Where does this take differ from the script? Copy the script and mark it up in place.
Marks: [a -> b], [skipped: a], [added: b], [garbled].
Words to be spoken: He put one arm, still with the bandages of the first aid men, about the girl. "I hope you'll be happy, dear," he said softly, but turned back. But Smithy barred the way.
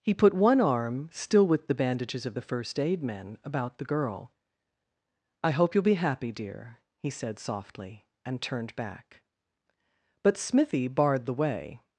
He put one arm, still with the bandages of the first aid men, about the girl. "I hope you'll be happy, dear," he said softly, [but -> and] turned back. But Smithy barred the way.